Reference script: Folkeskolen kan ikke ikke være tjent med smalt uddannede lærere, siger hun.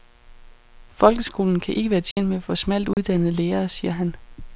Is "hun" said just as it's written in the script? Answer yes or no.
no